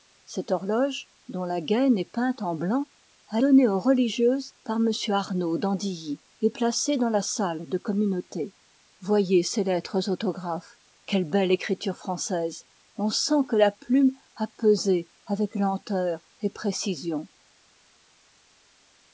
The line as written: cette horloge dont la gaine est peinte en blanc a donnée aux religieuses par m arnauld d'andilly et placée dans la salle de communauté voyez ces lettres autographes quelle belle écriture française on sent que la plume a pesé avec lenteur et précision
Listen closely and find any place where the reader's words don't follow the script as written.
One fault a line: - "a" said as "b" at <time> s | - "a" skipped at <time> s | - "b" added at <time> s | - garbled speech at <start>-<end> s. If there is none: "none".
none